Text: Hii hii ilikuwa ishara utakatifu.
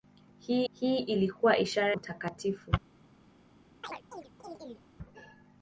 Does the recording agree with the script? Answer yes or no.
yes